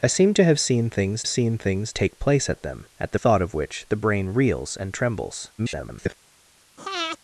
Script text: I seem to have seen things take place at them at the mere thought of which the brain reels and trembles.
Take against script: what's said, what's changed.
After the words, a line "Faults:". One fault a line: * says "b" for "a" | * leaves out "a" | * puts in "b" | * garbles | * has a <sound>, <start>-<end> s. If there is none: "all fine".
I seem to have seen things seen things take place at them at the thought of which the brain reels and trembles. [garbled]
Faults:
* puts in "seen things"
* leaves out "mere"
* garbles
* has a breath, 6.8-7.2 s